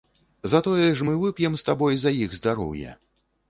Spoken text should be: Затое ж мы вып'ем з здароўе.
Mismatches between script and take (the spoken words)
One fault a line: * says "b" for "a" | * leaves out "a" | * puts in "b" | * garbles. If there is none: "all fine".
* puts in "табой за іх"